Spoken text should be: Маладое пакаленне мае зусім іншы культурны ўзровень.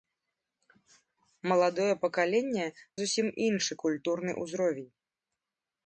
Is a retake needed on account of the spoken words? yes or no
yes